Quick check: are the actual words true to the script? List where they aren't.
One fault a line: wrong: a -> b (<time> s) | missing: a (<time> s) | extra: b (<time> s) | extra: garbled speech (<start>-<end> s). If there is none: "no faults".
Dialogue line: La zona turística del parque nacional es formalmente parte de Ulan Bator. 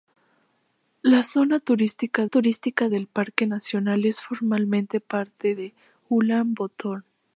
extra: turística (2.3 s)